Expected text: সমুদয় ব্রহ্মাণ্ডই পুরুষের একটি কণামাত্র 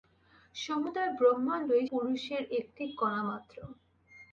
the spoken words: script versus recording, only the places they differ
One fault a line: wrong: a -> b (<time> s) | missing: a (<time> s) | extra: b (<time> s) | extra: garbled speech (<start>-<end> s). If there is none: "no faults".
no faults